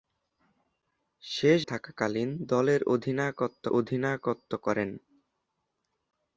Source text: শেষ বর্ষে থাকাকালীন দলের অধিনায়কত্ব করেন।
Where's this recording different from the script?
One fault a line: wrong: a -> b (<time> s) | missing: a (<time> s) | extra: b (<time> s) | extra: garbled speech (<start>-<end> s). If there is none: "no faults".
missing: বর্ষে (1.6 s)
extra: অধিনায়কত্ব (3.7 s)